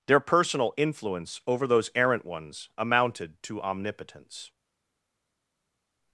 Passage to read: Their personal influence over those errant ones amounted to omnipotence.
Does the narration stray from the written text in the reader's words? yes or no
no